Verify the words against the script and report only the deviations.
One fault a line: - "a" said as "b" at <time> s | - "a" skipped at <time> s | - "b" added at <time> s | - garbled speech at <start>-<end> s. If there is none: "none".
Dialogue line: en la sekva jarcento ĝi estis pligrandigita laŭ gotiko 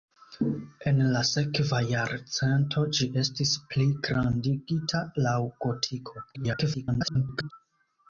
- garbled speech at 6.3-7.5 s